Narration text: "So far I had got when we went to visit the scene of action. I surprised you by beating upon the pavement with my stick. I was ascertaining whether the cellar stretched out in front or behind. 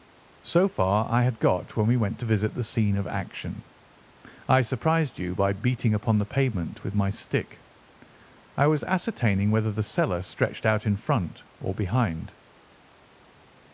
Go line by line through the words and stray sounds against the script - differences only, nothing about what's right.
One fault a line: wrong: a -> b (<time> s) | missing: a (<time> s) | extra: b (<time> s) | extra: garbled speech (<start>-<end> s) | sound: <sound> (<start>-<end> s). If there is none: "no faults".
no faults